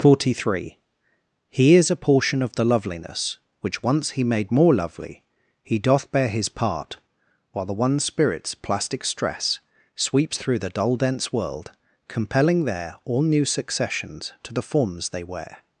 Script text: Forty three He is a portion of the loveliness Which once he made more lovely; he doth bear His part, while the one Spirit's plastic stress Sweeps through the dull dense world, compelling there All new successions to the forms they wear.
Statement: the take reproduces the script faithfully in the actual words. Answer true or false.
true